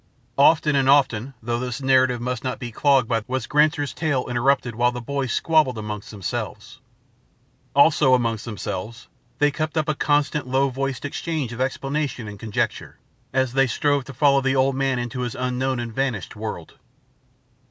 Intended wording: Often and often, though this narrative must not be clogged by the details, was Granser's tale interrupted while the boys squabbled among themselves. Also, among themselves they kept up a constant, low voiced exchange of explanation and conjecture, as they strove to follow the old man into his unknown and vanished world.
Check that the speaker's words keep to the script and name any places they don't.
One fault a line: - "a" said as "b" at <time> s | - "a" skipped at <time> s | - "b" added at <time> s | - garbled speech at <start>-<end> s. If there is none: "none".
- "the details" skipped at 3.2 s